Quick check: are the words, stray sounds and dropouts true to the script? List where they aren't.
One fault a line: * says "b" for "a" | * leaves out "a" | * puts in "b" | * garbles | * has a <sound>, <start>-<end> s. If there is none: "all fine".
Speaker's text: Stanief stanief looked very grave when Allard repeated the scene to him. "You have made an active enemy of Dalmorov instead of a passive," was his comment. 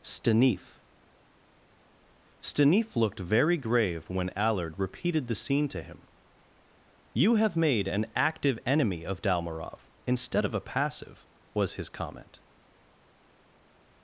all fine